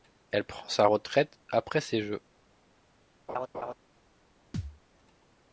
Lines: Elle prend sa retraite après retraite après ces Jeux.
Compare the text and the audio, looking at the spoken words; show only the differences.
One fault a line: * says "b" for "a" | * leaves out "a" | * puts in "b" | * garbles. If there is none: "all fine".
* leaves out "retraite après"